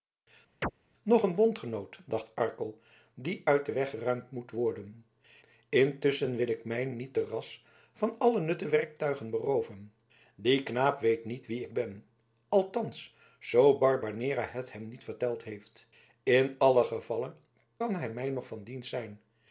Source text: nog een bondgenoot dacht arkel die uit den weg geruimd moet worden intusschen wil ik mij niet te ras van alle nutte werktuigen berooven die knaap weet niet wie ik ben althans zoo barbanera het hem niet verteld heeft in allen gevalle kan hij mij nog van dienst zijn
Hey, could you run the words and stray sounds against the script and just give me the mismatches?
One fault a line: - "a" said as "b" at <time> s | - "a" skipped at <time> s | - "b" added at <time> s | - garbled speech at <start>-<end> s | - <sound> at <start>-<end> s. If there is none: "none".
- chirp at 0.6-0.7 s